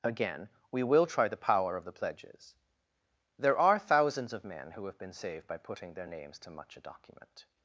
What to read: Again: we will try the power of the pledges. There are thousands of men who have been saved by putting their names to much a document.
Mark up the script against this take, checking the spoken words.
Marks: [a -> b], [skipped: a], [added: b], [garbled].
Again: we will try the power of the pledges. There are thousands of men who have been saved by putting their names to much a document.